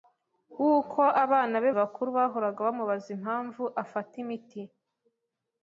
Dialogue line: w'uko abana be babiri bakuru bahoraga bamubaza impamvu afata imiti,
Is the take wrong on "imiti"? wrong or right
right